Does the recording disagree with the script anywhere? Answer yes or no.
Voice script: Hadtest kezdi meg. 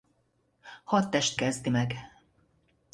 no